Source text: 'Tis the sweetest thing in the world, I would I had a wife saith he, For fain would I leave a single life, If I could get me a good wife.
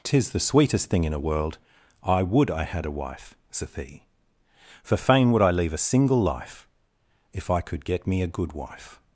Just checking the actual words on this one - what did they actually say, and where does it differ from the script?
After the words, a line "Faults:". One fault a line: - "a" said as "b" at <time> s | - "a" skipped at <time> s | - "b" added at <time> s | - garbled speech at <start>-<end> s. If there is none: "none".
'Tis the sweetest thing in a world, I would I had a wife saith he, For fain would I leave a single life, If I could get me a good wife.
Faults:
- "the" said as "a" at 1.1 s